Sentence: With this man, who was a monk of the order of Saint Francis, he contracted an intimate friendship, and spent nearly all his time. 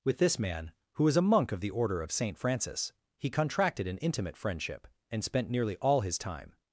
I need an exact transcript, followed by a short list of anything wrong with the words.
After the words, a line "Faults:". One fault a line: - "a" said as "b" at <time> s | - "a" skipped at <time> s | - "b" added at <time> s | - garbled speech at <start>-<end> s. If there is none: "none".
With this man, who was a monk of the order of Saint Francis, he contracted an intimate friendship, and spent nearly all his time.
Faults:
none